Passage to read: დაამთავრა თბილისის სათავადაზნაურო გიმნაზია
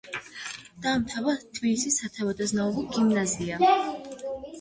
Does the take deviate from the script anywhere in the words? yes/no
no